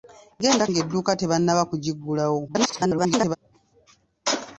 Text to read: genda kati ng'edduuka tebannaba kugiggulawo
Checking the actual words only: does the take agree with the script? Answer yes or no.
no